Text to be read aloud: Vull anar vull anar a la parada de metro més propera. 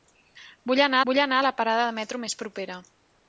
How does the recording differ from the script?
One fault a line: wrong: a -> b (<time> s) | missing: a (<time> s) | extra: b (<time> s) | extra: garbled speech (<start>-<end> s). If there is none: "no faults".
no faults